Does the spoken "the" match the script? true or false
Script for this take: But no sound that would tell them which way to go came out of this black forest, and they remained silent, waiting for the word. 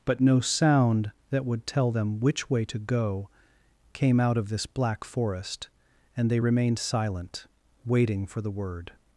true